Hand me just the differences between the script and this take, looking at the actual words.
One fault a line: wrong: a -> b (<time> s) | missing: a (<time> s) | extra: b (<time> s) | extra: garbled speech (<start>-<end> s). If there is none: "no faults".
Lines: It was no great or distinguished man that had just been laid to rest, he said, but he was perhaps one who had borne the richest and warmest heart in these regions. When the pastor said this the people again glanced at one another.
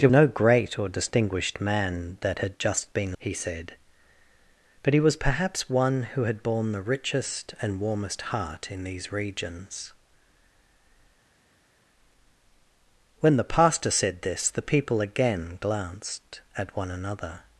missing: was (0.1 s)
missing: laid to rest (3.2 s)